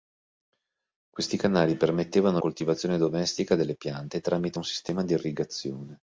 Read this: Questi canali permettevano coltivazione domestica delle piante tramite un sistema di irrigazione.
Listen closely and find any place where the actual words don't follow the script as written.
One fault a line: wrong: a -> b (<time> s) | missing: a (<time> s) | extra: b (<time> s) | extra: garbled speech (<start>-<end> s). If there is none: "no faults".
no faults